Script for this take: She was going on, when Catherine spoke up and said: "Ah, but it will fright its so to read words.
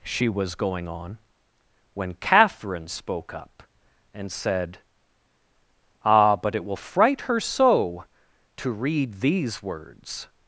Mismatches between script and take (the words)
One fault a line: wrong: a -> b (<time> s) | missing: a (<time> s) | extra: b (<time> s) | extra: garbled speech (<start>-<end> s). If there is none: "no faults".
wrong: its -> her (7.2 s)
extra: these (9.1 s)